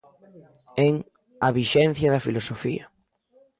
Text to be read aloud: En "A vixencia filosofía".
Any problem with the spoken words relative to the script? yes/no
yes